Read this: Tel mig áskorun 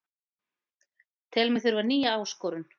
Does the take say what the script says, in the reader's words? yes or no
no